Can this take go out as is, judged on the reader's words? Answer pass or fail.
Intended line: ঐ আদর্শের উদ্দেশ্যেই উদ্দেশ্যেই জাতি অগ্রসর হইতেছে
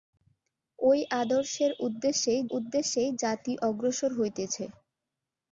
pass